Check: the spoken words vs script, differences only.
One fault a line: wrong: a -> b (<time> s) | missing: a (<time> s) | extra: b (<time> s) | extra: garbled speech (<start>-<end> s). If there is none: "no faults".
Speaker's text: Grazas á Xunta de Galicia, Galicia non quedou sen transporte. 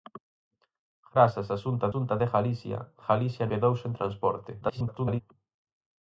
extra: Xunta (1.9 s)
missing: non (3.4 s)
extra: garbled speech (4.6-5.2 s)